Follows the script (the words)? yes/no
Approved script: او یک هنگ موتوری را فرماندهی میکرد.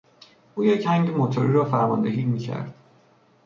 yes